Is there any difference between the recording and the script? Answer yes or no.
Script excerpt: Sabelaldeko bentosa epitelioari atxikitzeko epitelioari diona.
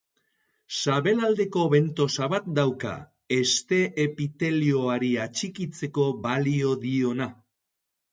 yes